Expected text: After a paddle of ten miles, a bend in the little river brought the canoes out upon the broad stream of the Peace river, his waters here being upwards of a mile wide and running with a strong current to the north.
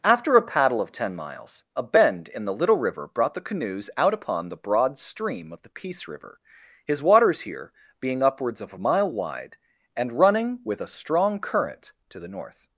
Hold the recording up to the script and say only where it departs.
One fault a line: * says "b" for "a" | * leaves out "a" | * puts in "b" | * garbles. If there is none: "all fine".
all fine